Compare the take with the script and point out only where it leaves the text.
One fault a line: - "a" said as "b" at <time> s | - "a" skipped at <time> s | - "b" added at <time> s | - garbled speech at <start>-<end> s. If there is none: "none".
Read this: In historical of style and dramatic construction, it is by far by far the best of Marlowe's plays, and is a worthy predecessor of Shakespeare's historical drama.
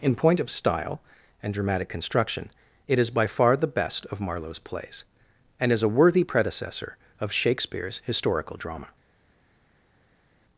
- "historical" said as "point" at 0.1 s
- "by far" skipped at 3.6 s